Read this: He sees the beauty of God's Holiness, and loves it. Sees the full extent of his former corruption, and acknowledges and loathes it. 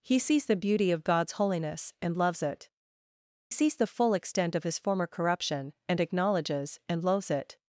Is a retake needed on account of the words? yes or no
no